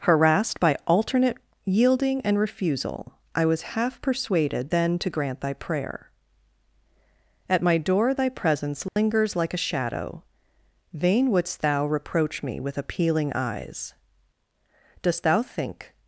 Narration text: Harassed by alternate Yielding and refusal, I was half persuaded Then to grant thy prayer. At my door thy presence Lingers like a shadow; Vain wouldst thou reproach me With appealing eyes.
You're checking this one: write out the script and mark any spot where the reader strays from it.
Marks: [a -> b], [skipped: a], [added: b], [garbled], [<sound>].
Harassed by alternate Yielding and refusal, I was half persuaded Then to grant thy prayer. At my door thy presence Lingers [dropout] like a shadow; Vain wouldst thou reproach me With appealing eyes. [added: Dost thou think]